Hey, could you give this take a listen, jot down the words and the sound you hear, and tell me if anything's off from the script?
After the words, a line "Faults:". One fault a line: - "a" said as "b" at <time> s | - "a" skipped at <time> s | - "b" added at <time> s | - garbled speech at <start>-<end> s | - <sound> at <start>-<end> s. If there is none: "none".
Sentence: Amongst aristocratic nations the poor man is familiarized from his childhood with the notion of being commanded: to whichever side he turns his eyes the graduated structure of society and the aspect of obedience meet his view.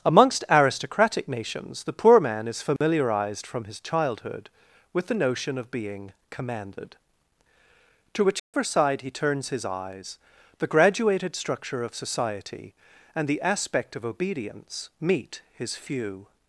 Amongst aristocratic nations the poor man is familiarized from his childhood with the notion of being commanded: to whichever side he turns his eyes the graduated structure of society and the aspect of obedience meet his few.
Faults:
- dropout at 2.8-2.8 s
- dropout at 8.4-8.5 s
- "view" said as "few" at 15.8 s